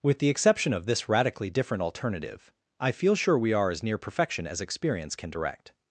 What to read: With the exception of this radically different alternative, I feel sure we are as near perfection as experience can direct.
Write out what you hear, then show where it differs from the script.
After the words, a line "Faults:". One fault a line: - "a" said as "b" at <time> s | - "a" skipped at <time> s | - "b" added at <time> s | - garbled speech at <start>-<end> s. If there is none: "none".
With the exception of this radically different alternative, I feel sure we are as near perfection as experience can direct.
Faults:
none